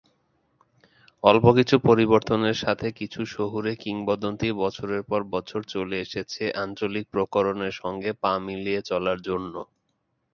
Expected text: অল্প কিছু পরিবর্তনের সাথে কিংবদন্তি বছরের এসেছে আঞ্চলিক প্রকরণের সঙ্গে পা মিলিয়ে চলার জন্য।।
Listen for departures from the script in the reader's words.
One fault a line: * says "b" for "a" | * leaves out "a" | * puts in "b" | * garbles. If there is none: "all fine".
* puts in "কিছু শহুরে"
* puts in "পর বছর চলে"